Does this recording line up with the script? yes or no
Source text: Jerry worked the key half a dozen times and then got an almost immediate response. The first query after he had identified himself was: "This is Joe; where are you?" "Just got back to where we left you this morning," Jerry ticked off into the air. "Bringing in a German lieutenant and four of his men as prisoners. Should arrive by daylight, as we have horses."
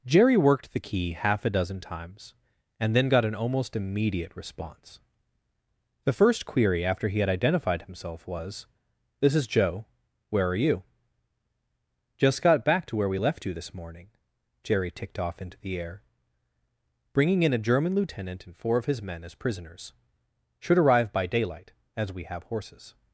yes